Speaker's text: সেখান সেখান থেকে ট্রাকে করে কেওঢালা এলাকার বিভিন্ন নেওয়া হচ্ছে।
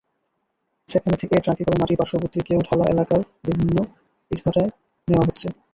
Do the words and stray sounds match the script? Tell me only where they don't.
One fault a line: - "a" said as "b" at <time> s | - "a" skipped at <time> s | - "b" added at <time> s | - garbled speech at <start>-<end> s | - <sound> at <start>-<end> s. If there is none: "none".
- "সেখান" skipped at 1.1 s
- "মাটি পার্শ্ববর্তী" added at 1.8 s
- "ইটভাটায়" added at 4.3 s